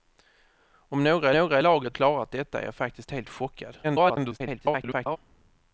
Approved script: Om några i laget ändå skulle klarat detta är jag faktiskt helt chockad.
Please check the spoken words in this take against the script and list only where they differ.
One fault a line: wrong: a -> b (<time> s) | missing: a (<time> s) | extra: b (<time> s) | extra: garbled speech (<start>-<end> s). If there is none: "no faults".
extra: några (1.3 s)
missing: ändå skulle (2.0 s)
extra: garbled speech (3.8-5.2 s)